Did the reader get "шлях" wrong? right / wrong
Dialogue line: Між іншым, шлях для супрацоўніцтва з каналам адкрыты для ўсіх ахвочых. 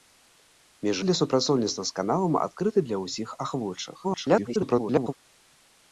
wrong